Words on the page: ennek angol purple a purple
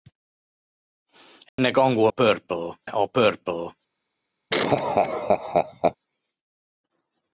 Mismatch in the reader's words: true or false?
false